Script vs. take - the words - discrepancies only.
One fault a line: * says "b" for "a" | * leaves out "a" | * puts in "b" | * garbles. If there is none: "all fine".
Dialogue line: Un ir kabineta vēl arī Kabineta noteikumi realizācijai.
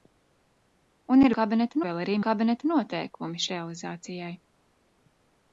all fine